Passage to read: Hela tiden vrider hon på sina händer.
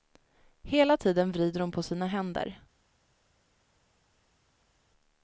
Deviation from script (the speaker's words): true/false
false